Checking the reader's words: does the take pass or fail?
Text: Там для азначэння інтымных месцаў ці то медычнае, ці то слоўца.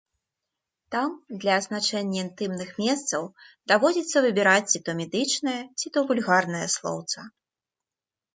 fail